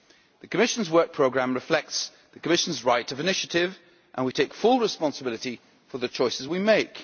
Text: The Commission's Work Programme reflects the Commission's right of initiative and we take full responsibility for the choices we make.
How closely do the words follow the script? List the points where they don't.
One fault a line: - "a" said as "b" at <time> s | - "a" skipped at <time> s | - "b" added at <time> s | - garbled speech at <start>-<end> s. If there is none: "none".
none